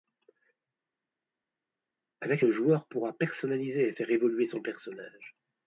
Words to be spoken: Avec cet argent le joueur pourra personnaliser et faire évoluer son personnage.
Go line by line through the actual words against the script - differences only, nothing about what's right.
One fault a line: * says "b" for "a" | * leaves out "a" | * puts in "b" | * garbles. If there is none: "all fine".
* leaves out "cet argent"